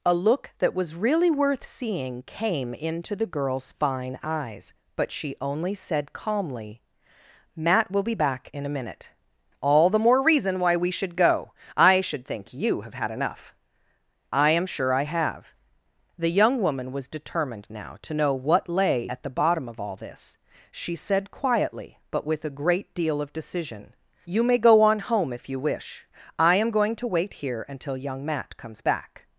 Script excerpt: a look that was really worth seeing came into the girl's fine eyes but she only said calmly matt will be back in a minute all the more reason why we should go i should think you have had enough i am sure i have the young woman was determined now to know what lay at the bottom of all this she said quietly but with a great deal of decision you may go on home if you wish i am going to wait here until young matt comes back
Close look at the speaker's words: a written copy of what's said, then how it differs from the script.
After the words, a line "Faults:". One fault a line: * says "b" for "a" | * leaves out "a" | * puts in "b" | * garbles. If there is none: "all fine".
a look that was really worth seeing came into the girl's fine eyes but she only said calmly matt will be back in a minute all the more reason why we should go i should think you have had enough i am sure i have the young woman was determined now to know what lay at the bottom of all this she said quietly but with a great deal of decision you may go on home if you wish i am going to wait here until young matt comes back
Faults:
all fine